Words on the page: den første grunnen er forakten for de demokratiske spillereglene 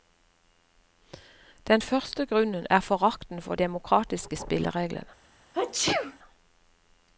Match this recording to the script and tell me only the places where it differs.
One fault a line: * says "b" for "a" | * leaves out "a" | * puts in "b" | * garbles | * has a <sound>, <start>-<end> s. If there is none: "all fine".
* leaves out "de"
* has a sneeze, 5.5-6.2 s